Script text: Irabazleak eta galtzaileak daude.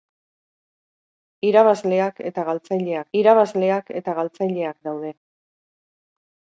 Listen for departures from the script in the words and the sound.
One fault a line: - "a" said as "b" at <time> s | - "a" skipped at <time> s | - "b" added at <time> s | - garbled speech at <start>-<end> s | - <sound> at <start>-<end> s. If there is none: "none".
- "irabazleak eta galtzaileak" added at 3.2 s